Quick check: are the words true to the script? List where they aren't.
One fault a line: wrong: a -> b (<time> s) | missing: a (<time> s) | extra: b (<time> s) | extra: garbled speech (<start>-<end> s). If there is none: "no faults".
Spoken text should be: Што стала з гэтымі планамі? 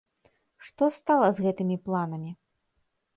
no faults